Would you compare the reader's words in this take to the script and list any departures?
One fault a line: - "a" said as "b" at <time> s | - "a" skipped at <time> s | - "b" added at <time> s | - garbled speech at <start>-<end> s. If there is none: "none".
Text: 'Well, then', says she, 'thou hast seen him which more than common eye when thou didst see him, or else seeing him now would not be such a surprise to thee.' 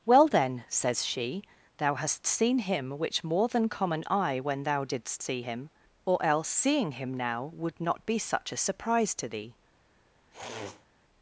none